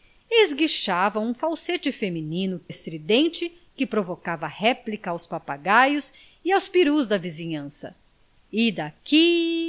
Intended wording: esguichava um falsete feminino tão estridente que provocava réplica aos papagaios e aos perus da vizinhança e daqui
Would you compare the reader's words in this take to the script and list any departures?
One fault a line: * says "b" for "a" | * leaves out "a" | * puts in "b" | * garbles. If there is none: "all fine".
* leaves out "tão"